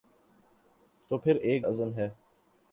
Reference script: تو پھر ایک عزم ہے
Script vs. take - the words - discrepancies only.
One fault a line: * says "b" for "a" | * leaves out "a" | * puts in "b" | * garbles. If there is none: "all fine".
all fine